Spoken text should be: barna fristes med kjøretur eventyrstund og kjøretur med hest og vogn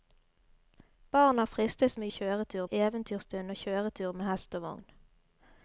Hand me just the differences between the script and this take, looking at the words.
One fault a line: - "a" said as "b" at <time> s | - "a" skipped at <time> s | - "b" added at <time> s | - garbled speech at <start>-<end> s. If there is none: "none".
none